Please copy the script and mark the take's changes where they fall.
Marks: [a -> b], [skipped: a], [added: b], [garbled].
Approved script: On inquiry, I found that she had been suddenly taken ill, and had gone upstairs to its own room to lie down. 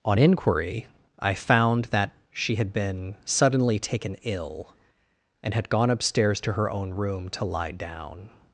On inquiry, I found that she had been suddenly taken ill, and had gone upstairs to [its -> her] own room to lie down.